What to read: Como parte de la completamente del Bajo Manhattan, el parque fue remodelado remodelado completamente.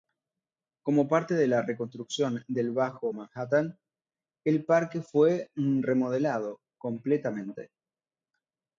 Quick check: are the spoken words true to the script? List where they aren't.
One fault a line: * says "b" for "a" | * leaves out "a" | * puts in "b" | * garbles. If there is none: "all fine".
* says "reconstrucción" for "completamente"
* leaves out "remodelado"